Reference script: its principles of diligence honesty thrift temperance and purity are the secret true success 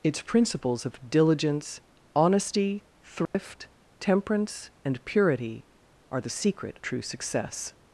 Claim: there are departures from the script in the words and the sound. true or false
true